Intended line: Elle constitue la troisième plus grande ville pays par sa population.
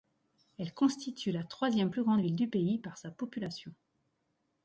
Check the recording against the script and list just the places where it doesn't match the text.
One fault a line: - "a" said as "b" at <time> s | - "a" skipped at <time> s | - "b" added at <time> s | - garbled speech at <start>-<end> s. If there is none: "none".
- "du" added at 2.4 s